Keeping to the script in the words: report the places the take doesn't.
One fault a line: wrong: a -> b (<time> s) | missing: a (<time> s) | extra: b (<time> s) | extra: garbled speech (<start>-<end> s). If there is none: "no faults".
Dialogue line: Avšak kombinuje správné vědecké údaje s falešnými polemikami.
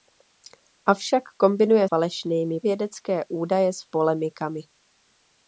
wrong: správné -> falešnými (1.9 s)
missing: falešnými (3.8 s)